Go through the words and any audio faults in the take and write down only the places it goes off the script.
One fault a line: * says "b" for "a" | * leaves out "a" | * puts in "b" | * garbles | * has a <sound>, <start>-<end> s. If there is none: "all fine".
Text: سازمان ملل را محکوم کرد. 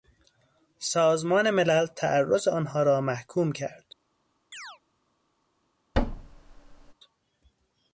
* puts in "تعرض آنها"
* has a chirp, 4.5-4.8 s
* has a thud, 5.9-6.9 s